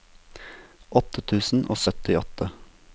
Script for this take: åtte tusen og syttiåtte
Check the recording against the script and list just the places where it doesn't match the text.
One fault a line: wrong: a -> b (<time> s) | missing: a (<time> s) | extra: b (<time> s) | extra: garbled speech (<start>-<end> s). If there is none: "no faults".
no faults